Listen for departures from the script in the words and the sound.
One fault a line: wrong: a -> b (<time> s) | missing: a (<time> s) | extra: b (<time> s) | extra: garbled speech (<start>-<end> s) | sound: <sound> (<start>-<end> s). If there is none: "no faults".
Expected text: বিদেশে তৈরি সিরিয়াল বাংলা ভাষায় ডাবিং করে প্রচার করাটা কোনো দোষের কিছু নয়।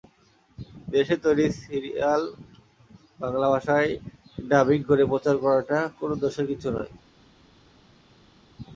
no faults